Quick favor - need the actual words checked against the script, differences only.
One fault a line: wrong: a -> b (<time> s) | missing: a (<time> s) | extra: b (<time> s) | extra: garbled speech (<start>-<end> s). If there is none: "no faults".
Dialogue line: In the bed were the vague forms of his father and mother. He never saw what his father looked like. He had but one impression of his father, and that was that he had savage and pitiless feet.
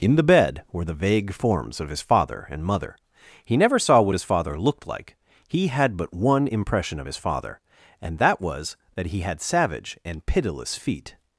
no faults